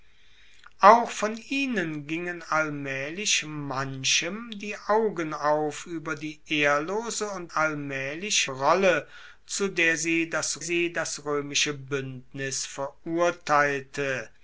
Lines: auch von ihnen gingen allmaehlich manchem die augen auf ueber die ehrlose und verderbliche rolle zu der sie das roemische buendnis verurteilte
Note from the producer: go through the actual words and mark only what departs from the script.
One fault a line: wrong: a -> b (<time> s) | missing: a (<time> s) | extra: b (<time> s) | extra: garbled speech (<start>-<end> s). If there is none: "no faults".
wrong: verderbliche -> allmaehlich (7.5 s)
extra: sie das (10.6 s)